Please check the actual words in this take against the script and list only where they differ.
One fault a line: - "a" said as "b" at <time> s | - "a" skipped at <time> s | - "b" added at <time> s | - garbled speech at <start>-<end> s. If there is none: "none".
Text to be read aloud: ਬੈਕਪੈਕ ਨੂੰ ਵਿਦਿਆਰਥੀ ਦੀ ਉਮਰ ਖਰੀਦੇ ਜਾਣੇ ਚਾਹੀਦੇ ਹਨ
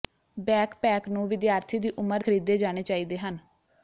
none